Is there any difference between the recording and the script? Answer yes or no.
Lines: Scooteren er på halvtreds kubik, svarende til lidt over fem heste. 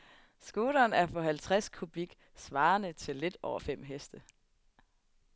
no